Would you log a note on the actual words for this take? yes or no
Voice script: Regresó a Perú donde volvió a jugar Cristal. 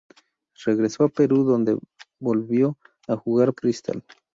no